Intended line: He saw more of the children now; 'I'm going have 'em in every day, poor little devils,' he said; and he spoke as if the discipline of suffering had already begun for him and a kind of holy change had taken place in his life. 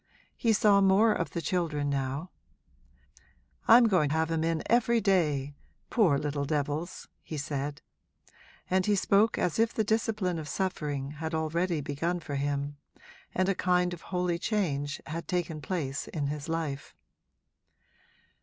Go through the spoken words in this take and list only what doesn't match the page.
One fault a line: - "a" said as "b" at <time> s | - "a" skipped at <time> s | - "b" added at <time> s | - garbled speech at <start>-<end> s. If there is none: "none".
none